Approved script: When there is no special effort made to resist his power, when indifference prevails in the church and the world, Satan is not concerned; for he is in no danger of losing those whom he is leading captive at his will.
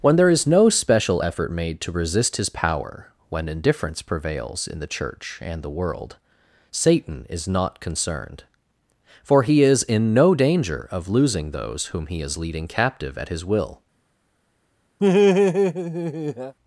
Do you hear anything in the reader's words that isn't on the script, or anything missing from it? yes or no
no